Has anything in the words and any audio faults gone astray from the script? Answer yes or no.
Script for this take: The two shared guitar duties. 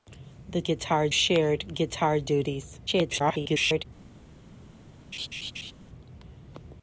yes